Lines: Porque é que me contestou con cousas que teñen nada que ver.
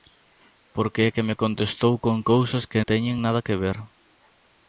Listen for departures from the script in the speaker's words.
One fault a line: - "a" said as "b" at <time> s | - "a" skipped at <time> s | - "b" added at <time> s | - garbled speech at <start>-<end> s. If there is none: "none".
none